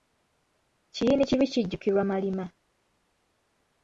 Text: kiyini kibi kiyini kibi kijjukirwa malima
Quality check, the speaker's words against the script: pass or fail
fail